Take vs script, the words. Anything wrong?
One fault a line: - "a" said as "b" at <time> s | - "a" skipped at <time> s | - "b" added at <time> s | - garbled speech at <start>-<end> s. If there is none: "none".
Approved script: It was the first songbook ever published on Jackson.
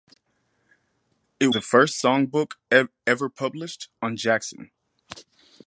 - "was" skipped at 1.5 s